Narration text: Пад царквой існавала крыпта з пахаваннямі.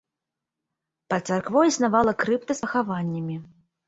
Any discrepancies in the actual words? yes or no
no